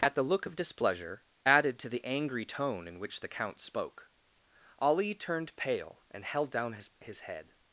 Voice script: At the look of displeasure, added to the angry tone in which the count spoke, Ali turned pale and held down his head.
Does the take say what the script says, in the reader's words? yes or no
no